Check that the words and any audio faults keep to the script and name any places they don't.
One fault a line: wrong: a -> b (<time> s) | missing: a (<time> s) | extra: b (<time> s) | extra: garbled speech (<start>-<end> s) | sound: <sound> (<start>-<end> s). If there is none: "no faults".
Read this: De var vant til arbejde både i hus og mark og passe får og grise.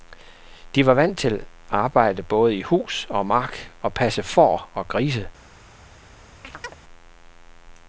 sound: chirp (6.4-6.7 s)